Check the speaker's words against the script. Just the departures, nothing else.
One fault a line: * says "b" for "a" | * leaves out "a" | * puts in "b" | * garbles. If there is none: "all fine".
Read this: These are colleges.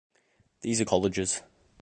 all fine